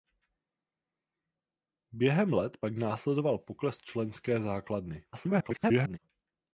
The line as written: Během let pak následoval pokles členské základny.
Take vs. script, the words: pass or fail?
fail